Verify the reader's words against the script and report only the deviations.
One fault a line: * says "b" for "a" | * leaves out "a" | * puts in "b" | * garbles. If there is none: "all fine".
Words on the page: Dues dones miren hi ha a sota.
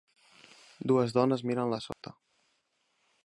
all fine